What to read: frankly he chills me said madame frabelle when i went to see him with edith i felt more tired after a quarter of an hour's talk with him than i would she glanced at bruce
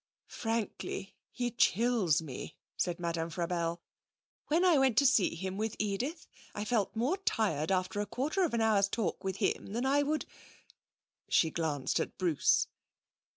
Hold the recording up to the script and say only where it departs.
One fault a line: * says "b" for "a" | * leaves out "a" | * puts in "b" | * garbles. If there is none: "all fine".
all fine